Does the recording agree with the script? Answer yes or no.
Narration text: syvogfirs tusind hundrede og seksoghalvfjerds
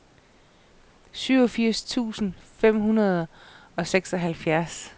no